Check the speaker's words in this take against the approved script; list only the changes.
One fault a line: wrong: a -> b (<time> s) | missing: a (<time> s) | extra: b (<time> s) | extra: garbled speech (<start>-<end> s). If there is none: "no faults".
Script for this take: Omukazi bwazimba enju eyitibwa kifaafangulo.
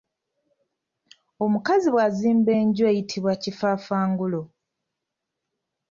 no faults